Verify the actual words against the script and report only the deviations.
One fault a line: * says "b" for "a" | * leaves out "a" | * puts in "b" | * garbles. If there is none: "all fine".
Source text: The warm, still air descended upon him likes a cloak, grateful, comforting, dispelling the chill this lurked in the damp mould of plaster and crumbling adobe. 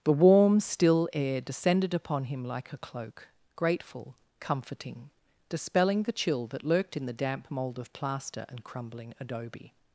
* says "like" for "likes"
* says "that" for "this"